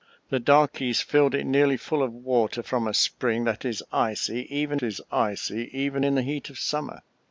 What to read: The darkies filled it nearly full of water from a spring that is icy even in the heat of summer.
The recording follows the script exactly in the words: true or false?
false